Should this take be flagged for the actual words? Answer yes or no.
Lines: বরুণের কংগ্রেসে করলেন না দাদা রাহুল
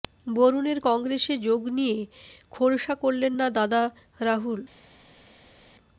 yes